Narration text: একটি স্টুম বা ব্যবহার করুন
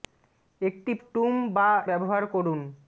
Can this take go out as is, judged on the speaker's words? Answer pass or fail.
pass